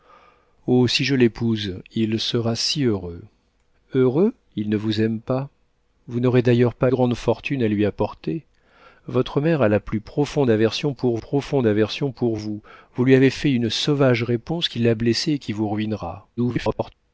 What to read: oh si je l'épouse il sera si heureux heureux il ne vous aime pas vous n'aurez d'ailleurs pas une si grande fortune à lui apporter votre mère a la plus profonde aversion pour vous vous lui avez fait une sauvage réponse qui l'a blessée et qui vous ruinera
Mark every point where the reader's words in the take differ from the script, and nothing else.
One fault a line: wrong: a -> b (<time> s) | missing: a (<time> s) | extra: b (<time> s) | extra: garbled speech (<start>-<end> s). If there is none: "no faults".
missing: une si (6.9 s)
extra: profonde aversion pour (11.2 s)
extra: garbled speech (16.4-16.9 s)